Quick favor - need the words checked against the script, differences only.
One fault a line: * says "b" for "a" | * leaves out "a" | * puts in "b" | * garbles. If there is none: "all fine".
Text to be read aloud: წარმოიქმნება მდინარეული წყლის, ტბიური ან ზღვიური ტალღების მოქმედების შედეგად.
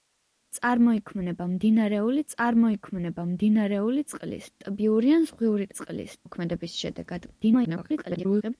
* puts in "წარმოიქმნება მდინარეული"
* says "წყლის" for "ტალღების"
* garbles